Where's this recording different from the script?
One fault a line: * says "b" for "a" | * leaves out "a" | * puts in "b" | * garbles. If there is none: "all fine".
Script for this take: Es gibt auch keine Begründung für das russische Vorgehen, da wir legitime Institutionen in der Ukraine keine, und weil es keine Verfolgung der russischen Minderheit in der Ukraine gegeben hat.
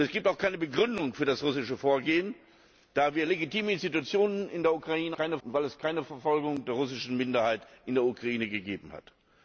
all fine